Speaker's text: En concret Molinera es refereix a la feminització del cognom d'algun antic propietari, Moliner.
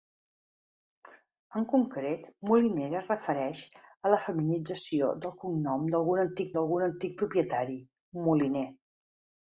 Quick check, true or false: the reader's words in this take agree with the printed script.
false